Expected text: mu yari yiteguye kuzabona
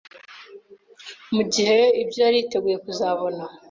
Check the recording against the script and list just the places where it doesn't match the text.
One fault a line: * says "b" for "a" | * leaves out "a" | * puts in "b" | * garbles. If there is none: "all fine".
* puts in "gihe ibyo"